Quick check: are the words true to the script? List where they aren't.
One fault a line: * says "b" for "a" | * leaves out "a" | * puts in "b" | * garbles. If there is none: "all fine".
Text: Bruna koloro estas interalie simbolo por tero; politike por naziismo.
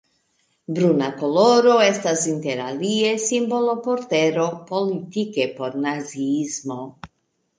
all fine